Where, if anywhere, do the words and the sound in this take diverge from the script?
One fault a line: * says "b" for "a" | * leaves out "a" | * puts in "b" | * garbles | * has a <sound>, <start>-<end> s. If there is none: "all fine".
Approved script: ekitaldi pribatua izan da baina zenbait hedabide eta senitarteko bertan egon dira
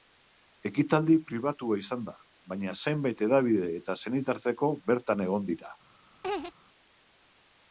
* has a laugh, 6.2-6.5 s